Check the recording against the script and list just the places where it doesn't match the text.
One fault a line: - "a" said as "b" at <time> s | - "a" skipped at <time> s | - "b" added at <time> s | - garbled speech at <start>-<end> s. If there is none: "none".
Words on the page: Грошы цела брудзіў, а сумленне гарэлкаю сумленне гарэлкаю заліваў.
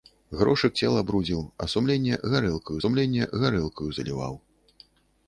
none